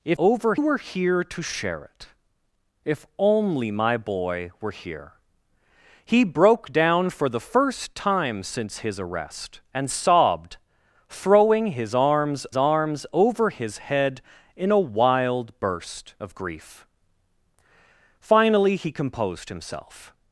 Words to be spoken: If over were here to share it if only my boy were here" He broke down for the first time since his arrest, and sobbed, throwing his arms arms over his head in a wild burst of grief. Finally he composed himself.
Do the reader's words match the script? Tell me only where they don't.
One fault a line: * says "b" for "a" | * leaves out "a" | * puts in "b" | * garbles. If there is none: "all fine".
all fine